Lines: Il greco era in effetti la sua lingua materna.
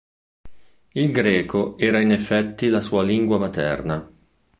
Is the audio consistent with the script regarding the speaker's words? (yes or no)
yes